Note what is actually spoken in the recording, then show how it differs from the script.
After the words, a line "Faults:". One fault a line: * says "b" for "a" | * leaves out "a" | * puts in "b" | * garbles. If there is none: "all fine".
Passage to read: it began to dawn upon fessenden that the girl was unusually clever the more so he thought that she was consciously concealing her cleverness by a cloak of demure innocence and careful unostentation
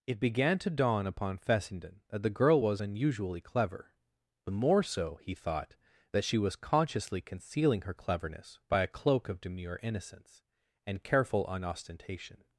it began to dawn upon fessenden that the girl was unusually clever the more so he thought that she was consciously concealing her cleverness by a cloak of demure innocence and careful unostentation
Faults:
all fine